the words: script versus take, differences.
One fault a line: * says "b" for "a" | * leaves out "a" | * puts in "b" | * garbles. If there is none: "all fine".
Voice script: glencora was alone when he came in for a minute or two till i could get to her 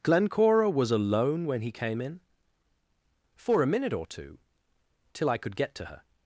all fine